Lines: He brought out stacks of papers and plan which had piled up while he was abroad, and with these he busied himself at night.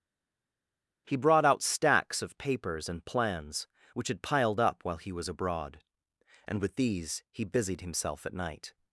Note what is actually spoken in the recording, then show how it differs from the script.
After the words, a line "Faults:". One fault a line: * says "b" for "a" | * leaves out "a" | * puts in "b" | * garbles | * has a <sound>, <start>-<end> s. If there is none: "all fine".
He brought out stacks of papers and plans which had piled up while he was abroad, and with these he busied himself at night.
Faults:
* says "plans" for "plan"